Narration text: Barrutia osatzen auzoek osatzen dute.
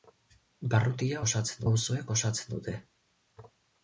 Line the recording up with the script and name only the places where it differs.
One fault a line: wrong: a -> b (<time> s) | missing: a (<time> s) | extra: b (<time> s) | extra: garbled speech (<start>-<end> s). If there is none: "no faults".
no faults